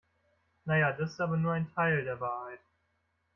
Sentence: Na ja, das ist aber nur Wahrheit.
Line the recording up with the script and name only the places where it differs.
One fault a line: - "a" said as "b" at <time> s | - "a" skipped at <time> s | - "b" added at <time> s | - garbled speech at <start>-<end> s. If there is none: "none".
- "ein Teil der" added at 1.5 s